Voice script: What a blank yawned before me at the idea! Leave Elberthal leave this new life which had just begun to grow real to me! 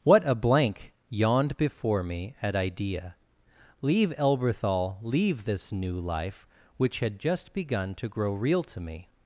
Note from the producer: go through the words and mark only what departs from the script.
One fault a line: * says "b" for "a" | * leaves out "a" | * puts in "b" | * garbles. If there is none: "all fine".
* leaves out "the"